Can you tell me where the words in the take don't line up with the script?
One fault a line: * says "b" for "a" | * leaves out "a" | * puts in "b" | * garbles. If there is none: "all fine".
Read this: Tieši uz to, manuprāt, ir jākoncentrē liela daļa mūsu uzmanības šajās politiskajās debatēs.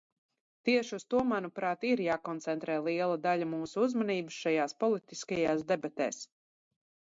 all fine